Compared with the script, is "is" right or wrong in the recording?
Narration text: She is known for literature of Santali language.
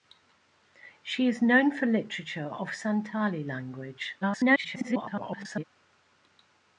right